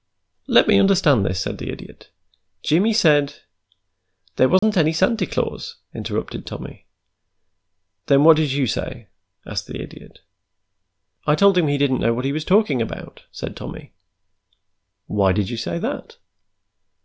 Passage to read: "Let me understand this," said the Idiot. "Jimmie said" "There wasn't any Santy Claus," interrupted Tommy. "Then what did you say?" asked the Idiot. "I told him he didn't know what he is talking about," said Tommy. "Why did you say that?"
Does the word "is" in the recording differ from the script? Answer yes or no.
yes